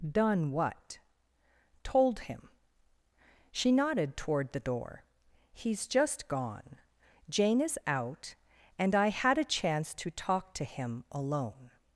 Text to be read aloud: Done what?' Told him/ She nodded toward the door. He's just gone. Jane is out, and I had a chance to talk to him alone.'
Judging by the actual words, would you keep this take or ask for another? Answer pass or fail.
pass